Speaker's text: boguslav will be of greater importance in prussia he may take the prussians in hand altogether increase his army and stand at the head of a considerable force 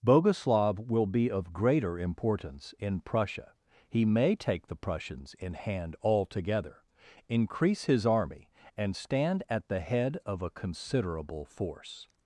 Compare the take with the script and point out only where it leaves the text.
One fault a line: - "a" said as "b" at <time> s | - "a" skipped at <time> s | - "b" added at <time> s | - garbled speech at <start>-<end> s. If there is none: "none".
none